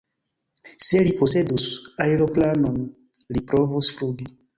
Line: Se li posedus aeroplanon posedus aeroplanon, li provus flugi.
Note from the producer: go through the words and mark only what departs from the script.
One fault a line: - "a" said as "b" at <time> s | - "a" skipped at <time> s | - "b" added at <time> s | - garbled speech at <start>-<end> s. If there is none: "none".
- "posedus aeroplanon" skipped at 2.8 s